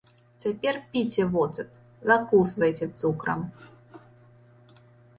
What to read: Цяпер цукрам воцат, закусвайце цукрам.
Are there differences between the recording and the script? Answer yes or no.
yes